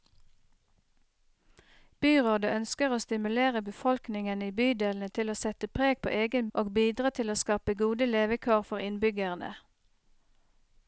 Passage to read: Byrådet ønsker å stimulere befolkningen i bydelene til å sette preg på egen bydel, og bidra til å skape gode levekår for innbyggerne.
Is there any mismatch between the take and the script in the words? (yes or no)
yes